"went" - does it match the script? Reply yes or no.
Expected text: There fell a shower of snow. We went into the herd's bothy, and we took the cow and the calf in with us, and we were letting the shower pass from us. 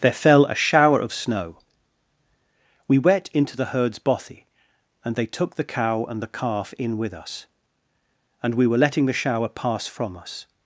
no